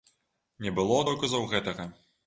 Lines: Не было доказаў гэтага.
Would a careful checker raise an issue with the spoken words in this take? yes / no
no